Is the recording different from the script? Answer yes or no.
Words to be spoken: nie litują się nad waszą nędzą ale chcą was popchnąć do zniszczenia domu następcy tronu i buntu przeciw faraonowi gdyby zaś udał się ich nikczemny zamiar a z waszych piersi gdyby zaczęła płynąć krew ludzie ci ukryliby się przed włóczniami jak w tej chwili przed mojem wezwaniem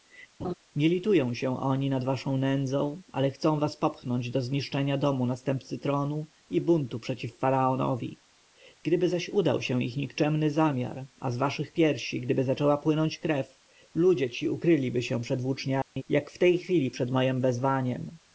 yes